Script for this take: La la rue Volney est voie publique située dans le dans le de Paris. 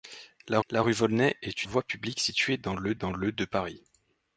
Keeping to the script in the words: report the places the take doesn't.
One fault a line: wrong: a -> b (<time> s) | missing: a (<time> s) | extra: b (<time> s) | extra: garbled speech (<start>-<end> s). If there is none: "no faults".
no faults